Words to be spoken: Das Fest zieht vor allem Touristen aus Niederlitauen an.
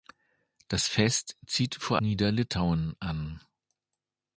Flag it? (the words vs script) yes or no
yes